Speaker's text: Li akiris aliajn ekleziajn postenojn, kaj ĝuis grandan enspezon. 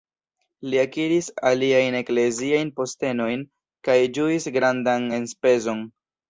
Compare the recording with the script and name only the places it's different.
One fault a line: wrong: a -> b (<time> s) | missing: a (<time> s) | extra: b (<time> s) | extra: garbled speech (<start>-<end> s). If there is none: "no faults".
no faults